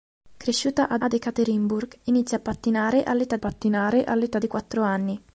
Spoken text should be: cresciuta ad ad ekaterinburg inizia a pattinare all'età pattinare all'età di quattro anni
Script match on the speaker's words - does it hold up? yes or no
yes